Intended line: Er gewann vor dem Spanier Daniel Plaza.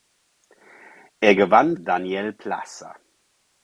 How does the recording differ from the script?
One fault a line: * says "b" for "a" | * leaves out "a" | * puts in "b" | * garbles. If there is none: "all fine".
* leaves out "vor dem Spanier"